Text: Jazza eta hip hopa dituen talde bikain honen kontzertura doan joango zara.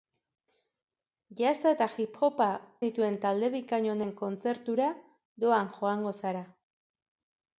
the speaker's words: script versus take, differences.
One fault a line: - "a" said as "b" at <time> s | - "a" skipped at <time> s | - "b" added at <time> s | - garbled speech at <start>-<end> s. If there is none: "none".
none